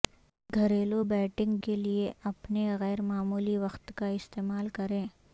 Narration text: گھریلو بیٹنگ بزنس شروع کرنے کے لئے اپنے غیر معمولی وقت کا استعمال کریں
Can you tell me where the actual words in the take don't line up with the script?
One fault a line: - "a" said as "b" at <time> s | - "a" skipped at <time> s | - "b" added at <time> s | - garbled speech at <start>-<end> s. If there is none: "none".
- "بزنس شروع کرنے" skipped at 1.6 s